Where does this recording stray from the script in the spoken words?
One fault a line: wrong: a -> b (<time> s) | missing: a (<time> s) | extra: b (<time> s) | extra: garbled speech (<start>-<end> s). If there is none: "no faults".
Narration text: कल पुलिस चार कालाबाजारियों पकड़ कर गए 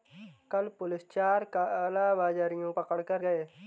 no faults